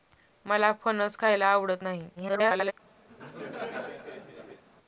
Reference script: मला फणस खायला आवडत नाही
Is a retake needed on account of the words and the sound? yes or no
yes